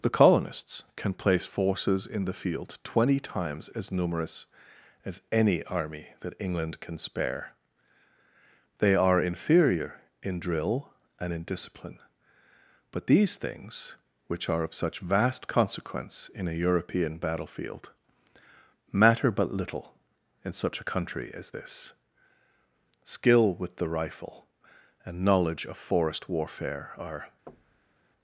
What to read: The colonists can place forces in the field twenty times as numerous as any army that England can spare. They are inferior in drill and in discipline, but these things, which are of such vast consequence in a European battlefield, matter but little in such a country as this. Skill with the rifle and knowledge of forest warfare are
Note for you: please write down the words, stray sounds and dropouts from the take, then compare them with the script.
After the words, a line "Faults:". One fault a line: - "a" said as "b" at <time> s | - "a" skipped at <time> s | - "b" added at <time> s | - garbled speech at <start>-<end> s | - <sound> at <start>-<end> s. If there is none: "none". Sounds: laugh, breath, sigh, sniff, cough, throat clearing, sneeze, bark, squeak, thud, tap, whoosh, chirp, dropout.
The colonists can place forces in the field twenty times as numerous as any army that England can spare. They are inferior in drill and in discipline, but these things, which are of such vast consequence in a European battlefield, matter but little in such a country as this. Skill with the rifle and knowledge of forest warfare are
Faults:
- thud at 27.5-28.0 s